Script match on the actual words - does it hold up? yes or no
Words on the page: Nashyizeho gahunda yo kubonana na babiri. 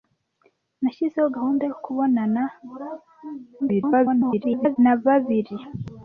no